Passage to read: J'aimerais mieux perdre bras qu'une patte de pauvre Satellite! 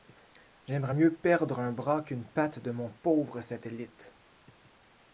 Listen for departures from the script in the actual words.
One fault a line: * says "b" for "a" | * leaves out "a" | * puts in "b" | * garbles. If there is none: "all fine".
* puts in "un"
* puts in "mon"